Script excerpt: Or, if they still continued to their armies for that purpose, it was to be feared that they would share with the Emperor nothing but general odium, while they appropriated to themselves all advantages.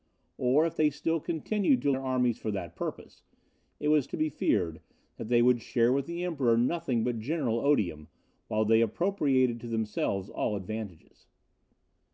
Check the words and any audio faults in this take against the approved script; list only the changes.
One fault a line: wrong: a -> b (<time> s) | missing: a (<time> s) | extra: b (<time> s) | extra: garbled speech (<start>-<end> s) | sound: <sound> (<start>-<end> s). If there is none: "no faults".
no faults